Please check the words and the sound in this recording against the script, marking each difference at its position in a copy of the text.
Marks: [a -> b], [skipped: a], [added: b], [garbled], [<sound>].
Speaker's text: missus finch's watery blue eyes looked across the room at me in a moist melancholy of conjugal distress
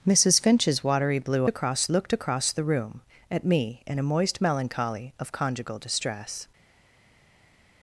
missus finch's watery blue [eyes -> across] looked across the room at me in a moist melancholy of conjugal distress